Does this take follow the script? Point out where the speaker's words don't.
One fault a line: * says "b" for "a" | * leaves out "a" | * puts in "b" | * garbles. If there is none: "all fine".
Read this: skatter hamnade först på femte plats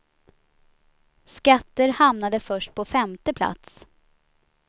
all fine